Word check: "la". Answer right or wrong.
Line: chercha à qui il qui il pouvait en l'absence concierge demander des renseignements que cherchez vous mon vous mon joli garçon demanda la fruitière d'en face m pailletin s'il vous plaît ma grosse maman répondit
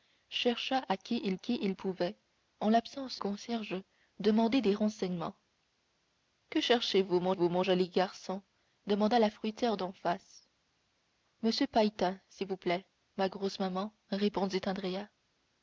right